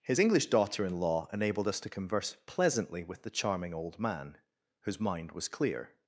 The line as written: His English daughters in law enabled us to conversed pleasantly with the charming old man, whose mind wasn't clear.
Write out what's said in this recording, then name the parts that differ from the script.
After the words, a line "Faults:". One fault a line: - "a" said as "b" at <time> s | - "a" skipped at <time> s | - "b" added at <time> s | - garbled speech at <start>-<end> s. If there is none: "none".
His English daughter in law enabled us to converse pleasantly with the charming old man, whose mind was clear.
Faults:
- "daughters" said as "daughter" at 0.5 s
- "conversed" said as "converse" at 1.9 s
- "wasn't" said as "was" at 5.3 s